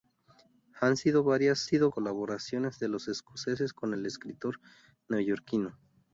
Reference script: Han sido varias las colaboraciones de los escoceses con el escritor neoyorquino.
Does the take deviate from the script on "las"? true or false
true